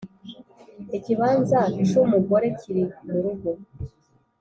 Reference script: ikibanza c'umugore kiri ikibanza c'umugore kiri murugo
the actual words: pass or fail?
fail